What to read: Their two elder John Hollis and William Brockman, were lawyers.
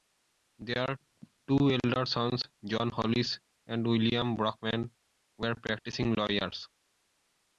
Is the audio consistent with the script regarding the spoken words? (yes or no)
no